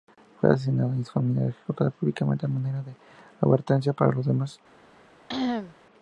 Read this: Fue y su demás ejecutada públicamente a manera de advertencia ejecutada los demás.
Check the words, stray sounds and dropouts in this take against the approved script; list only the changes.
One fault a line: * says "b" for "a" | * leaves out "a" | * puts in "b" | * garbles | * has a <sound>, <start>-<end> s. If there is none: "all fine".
* puts in "asesinado"
* says "familia" for "demás"
* says "para" for "ejecutada"
* has a cough, 5.3-5.8 s